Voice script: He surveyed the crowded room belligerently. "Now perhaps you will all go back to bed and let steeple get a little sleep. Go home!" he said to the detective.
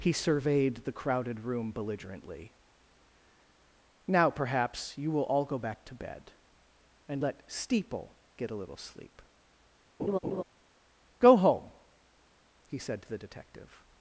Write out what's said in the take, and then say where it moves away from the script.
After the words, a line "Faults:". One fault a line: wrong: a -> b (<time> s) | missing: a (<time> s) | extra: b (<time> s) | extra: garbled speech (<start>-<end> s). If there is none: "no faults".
He surveyed the crowded room belligerently. "Now perhaps you will all go back to bed and let steeple get a little sleep. Go home!" he said to the detective.
Faults:
no faults